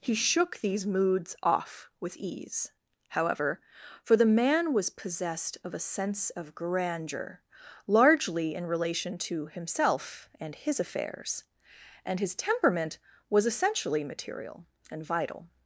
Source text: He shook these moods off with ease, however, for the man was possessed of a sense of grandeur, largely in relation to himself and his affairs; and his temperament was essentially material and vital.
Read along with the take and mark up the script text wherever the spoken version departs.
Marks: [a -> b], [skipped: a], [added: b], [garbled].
He shook these moods off with ease, however, for the man was possessed of a sense of grandeur, largely in relation to himself and his affairs; and his temperament was essentially material and vital.